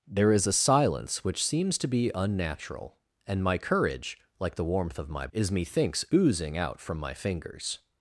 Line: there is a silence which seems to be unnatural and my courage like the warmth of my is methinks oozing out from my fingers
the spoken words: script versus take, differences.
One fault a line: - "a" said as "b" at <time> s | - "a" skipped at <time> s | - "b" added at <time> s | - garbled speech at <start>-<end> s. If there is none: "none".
none